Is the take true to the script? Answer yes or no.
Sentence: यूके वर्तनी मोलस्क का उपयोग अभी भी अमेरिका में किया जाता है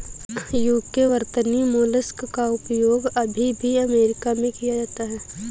yes